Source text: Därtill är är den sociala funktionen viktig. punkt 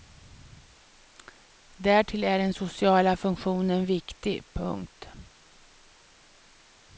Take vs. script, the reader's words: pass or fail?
fail